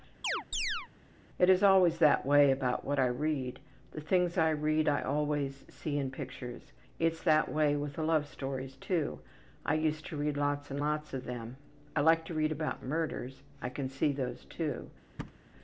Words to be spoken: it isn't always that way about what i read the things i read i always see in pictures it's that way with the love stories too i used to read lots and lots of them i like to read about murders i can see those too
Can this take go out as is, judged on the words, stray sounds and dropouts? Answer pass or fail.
fail